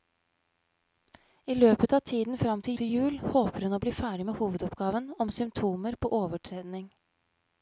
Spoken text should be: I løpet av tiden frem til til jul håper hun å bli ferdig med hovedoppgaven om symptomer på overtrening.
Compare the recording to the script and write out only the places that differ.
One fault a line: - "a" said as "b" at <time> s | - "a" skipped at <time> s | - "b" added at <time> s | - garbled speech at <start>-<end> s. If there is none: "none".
none